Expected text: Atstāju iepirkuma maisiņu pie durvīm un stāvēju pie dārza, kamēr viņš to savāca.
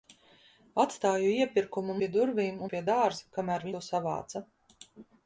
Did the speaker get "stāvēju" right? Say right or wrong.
wrong